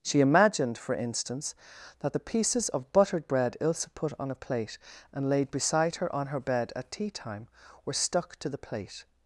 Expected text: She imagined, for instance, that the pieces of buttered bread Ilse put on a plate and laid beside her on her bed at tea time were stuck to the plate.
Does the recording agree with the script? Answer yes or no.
yes